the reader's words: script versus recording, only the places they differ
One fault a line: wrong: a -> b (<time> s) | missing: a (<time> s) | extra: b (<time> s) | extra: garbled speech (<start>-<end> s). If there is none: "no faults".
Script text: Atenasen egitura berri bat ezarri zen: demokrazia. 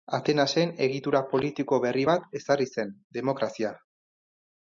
extra: politiko (1.3 s)